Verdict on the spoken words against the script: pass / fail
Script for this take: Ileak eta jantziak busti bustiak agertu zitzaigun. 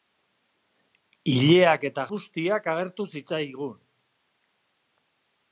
fail